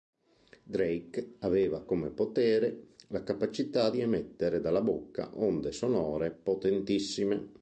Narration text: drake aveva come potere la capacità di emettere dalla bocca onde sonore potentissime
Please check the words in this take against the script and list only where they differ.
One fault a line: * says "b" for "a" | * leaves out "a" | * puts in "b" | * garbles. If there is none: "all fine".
all fine